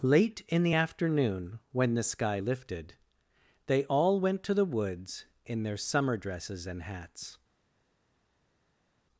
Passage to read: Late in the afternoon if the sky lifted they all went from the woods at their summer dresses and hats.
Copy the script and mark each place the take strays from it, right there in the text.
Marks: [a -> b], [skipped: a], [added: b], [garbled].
Late in the afternoon [if -> when] the sky lifted they all went [from -> to] the woods [at -> in] their summer dresses and hats.